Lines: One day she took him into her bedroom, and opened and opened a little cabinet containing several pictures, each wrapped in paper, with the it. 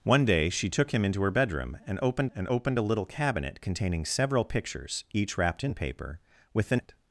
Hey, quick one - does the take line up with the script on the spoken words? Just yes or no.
yes